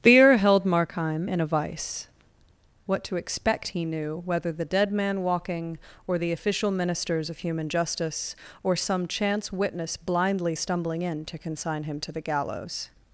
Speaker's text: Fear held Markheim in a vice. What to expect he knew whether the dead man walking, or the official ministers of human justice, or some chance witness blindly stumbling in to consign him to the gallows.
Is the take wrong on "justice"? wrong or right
right